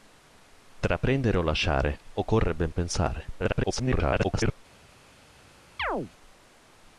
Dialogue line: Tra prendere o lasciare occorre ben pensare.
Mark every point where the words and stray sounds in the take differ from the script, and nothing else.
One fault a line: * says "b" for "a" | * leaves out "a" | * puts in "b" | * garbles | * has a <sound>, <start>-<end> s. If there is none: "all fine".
* garbles
* has a chirp, 5.8-6.1 s